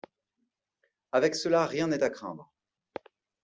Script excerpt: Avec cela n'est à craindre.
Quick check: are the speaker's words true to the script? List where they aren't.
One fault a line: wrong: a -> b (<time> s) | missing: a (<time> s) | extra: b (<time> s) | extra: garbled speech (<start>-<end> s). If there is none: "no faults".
extra: rien (1.7 s)